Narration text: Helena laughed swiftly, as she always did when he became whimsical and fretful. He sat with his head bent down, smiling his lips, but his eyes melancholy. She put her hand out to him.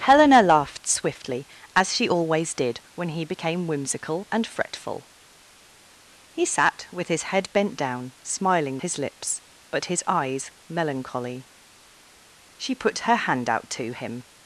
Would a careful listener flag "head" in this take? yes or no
no